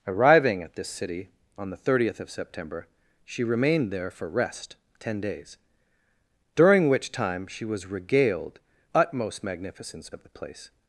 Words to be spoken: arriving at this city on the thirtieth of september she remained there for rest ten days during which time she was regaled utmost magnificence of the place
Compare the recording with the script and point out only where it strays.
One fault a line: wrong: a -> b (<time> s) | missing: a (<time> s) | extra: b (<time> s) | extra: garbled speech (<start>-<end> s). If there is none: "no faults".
no faults